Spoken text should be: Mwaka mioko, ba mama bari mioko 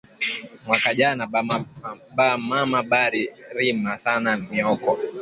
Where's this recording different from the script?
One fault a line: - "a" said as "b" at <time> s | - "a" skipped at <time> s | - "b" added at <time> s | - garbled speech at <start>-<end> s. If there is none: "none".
- "mioko" said as "jana" at 1.0 s
- "rima sana" added at 3.6 s